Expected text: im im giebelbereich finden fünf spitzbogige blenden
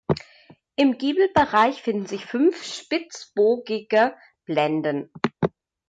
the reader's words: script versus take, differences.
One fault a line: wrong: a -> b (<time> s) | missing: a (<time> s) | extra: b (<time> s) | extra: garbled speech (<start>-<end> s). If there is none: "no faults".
missing: im (1.0 s)
extra: sich (2.0 s)